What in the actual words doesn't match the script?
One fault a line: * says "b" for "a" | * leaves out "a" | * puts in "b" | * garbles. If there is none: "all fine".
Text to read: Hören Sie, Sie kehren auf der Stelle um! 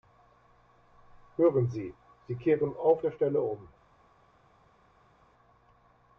all fine